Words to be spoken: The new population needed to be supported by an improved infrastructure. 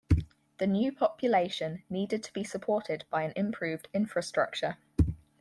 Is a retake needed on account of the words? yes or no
no